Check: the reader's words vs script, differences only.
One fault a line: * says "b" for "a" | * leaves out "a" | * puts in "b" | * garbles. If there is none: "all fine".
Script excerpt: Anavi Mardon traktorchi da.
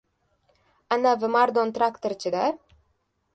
all fine